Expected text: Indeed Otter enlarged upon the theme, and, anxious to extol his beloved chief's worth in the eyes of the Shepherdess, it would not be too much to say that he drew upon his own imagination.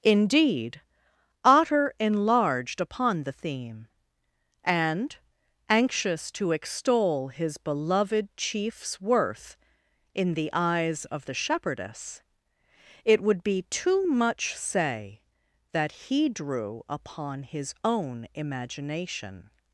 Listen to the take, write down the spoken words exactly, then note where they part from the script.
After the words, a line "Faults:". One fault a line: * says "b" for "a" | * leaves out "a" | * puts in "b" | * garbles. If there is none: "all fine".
Indeed Otter enlarged upon the theme, and, anxious to extol his beloved chief's worth in the eyes of the Shepherdess, it would be too much say that he drew upon his own imagination.
Faults:
* leaves out "not"
* leaves out "to"